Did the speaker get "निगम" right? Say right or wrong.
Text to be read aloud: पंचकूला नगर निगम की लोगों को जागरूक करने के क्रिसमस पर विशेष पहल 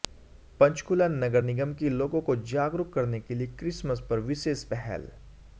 right